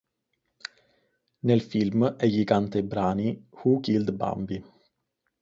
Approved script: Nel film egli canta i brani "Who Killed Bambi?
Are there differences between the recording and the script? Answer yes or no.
no